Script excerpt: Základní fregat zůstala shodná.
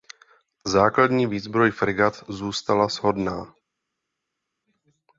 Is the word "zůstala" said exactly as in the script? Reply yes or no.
yes